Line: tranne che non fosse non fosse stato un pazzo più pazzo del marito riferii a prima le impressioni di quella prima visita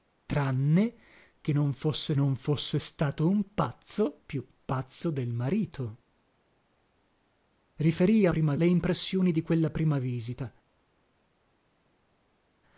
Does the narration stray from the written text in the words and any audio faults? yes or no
no